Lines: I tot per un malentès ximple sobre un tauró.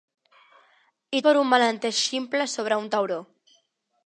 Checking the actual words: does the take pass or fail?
fail